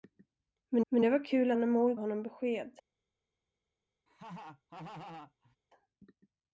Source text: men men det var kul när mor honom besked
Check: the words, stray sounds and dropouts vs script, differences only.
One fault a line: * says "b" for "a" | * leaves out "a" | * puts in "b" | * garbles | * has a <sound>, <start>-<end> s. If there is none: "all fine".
* has a laugh, 4.1-5.6 s